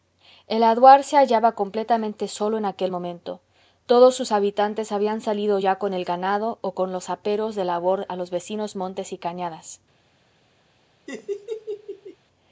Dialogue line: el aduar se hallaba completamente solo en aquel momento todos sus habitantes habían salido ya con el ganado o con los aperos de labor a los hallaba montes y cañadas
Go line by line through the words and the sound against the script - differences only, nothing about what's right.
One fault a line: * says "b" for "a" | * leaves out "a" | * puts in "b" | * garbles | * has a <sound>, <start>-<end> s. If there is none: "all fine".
* says "vecinos" for "hallaba"
* has a laugh, 11.1-12.2 s